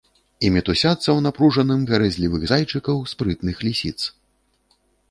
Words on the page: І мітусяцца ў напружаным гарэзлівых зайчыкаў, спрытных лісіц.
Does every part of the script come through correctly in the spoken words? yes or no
yes